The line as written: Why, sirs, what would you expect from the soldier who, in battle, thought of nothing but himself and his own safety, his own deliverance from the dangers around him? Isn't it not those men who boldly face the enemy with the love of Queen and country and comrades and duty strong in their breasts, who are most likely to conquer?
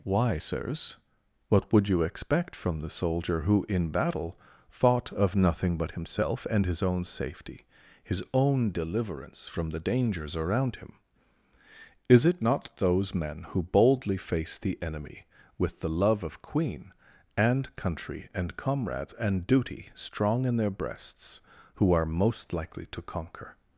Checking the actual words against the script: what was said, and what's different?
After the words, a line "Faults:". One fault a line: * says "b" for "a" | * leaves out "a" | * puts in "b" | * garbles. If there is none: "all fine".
Why, sirs, what would you expect from the soldier who, in battle, thought of nothing but himself and his own safety, his own deliverance from the dangers around him? Is it not those men who boldly face the enemy with the love of Queen and country and comrades and duty strong in their breasts, who are most likely to conquer?
Faults:
* says "Is" for "Isn't"